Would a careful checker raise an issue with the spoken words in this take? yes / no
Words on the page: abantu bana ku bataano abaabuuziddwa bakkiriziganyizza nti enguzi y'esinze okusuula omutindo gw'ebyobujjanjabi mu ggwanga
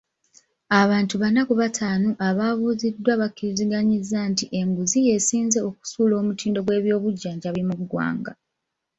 no